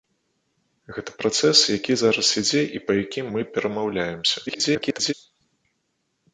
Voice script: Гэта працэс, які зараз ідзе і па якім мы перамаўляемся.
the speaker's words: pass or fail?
fail